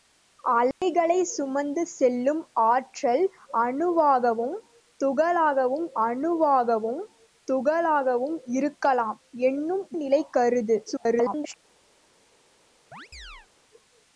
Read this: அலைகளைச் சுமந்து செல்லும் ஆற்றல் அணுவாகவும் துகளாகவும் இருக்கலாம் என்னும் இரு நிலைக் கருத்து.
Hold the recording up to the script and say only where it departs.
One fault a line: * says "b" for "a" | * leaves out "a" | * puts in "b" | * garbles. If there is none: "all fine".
* puts in "அணுவாகவும் துகளாகவும்"
* leaves out "இரு"
* garbles